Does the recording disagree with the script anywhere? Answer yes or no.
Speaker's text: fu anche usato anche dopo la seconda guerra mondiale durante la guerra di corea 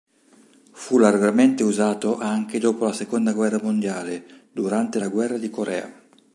yes